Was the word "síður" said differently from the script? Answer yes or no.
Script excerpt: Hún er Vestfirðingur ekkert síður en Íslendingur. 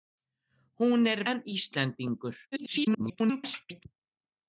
yes